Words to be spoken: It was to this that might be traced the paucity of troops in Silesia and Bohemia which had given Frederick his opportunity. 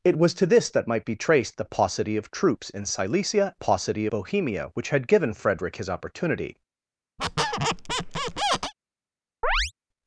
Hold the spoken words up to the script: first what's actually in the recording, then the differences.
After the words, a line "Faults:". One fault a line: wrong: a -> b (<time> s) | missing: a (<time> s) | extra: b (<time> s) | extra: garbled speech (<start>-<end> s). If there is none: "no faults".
It was to this that might be traced the paucity of troops in Silesia paucity Bohemia which had given Frederick his opportunity.
Faults:
wrong: and -> paucity (3.5 s)